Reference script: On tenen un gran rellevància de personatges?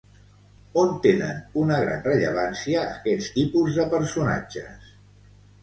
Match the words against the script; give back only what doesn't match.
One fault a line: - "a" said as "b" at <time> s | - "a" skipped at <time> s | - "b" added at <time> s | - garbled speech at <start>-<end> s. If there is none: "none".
- "un" said as "una" at 1.6 s
- "aquests tipus" added at 2.9 s